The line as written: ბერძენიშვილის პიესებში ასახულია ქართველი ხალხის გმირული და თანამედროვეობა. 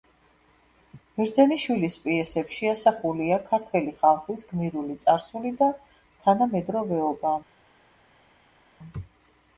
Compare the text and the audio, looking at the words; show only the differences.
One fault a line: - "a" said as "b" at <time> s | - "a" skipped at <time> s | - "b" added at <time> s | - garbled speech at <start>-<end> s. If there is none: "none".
- "წარსული" added at 5.0 s